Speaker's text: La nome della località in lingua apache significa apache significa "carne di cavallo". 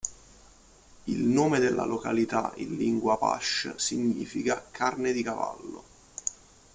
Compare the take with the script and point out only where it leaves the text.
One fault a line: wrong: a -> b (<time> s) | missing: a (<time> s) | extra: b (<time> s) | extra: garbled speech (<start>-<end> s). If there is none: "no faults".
wrong: La -> Il (1.0 s)
missing: apache significa (4.6 s)